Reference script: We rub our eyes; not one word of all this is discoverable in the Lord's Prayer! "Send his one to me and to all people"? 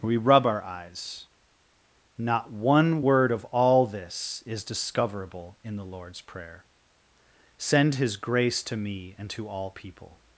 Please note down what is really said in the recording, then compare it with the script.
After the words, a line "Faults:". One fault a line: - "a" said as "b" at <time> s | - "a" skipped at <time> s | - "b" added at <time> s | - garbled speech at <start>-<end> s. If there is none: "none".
We rub our eyes; not one word of all this is discoverable in the Lord's Prayer! "Send his grace to me and to all people"?
Faults:
- "one" said as "grace" at 8.2 s